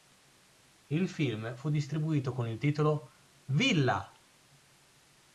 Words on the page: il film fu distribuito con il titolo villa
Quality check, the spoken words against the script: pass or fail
pass